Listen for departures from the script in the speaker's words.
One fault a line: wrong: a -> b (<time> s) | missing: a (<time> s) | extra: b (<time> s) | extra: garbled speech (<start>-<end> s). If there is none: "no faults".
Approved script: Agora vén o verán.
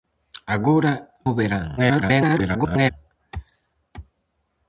missing: vén (0.9 s)
extra: garbled speech (1.8-2.9 s)